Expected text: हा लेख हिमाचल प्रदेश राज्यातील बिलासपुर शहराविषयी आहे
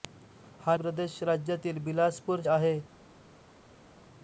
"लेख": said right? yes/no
no